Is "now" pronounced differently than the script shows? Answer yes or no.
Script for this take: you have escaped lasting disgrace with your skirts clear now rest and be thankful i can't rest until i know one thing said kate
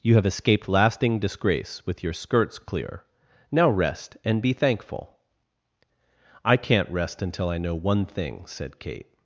no